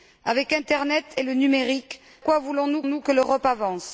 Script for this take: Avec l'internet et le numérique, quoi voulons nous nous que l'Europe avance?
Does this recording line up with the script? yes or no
yes